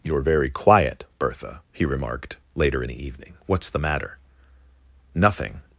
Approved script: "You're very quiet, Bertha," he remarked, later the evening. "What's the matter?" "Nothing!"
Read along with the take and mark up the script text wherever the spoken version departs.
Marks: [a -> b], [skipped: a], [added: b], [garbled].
"You're very quiet, Bertha," he remarked, later the evening. "What's the matter?" "Nothing!"